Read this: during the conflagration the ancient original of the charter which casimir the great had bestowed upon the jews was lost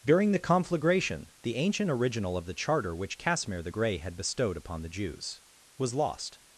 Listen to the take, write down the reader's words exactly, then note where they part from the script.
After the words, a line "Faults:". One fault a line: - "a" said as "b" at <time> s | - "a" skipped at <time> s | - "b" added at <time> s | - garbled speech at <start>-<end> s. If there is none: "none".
during the conflagration the ancient original of the charter which casimir the grey had bestowed upon the jews was lost
Faults:
- "great" said as "grey" at 3.7 s